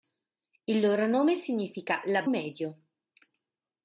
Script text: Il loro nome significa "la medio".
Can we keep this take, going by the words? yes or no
yes